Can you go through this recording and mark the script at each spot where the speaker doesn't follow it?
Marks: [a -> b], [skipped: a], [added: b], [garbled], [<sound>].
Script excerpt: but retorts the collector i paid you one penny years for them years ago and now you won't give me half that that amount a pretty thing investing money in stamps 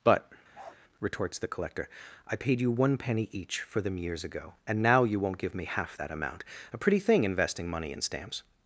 but [bark] retorts the collector i paid you one penny [years -> each] for them years ago and now you won't give me half that [skipped: that] amount a pretty thing investing money in stamps